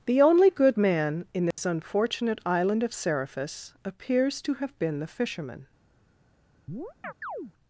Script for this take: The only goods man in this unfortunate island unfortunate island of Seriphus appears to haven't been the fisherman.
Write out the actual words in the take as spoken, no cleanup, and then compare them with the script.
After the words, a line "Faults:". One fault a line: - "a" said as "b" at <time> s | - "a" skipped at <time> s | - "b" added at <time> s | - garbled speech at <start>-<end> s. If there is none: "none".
The only good man in this unfortunate island of Seriphus appears to have been the fisherman.
Faults:
- "goods" said as "good" at 0.5 s
- "unfortunate island" skipped at 2.8 s
- "haven't" said as "have" at 4.6 s